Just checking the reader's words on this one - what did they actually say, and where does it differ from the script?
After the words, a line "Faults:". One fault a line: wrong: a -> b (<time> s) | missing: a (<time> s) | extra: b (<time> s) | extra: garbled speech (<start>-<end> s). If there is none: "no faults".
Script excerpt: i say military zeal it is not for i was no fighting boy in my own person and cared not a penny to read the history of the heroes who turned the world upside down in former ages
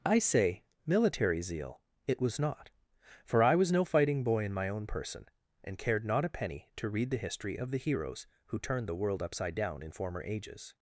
i say military zeal it was not for i was no fighting boy in my own person and cared not a penny to read the history of the heroes who turned the world upside down in former ages
Faults:
wrong: is -> was (2.2 s)